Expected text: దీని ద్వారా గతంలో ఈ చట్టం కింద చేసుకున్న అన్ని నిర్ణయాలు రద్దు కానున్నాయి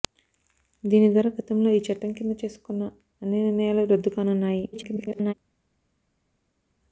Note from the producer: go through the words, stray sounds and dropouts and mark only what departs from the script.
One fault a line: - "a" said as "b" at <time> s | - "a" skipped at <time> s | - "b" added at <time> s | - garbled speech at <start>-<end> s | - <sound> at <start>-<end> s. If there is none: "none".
- garbled speech at 4.7-5.3 s